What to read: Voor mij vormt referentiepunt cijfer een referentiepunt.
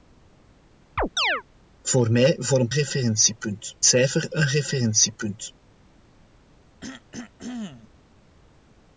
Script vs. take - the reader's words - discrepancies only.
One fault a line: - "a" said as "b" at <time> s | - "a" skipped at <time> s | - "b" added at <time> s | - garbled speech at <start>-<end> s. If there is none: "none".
none